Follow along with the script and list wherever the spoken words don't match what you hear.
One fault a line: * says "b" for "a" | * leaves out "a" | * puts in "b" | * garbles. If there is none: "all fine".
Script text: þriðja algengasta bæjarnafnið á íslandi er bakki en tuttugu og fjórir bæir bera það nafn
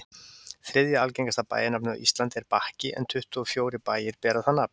all fine